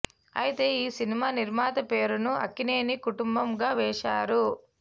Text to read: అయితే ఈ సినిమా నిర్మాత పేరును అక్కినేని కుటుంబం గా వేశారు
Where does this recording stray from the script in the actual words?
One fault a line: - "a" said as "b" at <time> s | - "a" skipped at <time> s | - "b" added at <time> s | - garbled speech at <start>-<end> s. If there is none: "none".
none